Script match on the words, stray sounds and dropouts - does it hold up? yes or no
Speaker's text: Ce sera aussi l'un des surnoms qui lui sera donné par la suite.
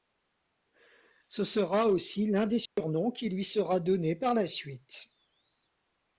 no